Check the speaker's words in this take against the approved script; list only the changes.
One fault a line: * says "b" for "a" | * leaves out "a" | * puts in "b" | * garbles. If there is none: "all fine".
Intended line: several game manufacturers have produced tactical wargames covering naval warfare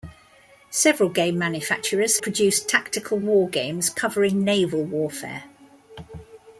* leaves out "have"